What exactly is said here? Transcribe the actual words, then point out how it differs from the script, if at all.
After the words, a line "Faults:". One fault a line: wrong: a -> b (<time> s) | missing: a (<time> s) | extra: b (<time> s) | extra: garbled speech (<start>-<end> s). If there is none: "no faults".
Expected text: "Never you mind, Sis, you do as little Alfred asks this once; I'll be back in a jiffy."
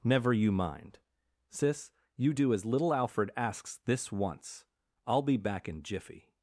"Never you mind, Sis, you do as little Alfred asks this once; I'll be back in jiffy."
Faults:
missing: a (5.8 s)